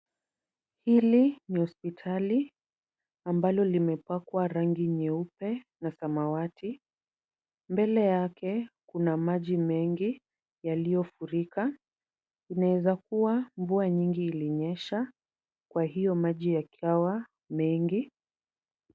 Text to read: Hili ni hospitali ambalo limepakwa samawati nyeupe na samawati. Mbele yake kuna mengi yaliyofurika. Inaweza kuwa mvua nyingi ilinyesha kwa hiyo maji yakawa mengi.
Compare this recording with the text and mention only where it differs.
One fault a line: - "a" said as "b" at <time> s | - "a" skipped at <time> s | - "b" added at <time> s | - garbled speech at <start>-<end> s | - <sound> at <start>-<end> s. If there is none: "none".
- "samawati" said as "rangi" at 4.5 s
- "maji" added at 9.2 s